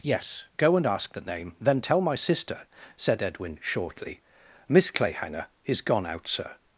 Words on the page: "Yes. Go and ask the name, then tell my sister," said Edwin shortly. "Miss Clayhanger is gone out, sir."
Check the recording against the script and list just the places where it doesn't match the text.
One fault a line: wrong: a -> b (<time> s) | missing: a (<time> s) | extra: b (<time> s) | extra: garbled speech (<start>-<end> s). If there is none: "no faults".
no faults